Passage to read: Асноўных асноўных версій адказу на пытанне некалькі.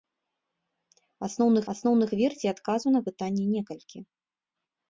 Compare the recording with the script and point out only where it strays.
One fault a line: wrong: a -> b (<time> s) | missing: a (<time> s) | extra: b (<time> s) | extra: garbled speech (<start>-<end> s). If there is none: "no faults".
no faults